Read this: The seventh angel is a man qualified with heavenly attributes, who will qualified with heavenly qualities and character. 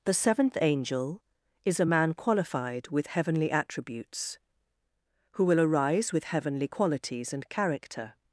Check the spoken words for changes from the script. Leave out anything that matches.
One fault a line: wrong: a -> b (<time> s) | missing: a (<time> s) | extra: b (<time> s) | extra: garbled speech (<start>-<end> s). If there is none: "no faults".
wrong: qualified -> arise (5.6 s)